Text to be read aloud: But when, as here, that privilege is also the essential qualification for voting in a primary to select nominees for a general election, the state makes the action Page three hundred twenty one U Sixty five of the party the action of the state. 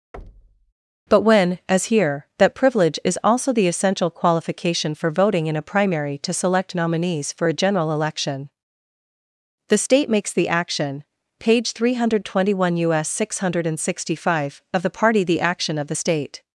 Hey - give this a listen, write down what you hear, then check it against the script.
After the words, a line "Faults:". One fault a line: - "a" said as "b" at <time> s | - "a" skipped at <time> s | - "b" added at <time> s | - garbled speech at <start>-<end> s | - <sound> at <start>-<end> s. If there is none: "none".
But when, as here, that privilege is also the essential qualification for voting in a primary to select nominees for a general election, the state makes the action Page three hundred twenty one U S six hundred sixty five of the party the action of the state.
Faults:
- thud at 0.1-0.7 s
- "S six hundred" added at 12.9 s